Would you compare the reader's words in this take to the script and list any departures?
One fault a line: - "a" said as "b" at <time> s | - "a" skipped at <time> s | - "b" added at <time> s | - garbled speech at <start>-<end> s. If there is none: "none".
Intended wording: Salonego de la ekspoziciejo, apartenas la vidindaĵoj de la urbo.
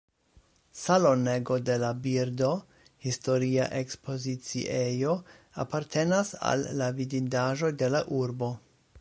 - "birdo historia" added at 2.1 s
- "al" added at 6.5 s